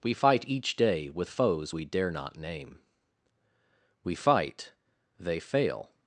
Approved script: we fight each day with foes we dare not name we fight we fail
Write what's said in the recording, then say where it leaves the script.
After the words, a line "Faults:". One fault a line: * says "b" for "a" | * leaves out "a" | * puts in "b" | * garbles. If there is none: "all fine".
we fight each day with foes we dare not name we fight they fail
Faults:
* says "they" for "we"